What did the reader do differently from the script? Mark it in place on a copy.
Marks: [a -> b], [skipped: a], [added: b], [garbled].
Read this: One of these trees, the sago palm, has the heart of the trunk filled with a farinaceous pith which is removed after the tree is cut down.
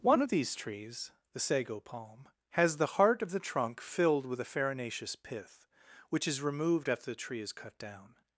One of these trees, the sago palm, has the heart of the trunk filled with a farinaceous pith which is removed after the tree is cut down.